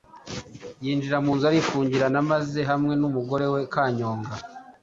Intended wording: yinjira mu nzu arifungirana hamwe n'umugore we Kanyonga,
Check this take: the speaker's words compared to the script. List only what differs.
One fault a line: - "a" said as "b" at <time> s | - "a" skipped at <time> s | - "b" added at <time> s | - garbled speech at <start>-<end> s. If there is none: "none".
- "maze" added at 2.3 s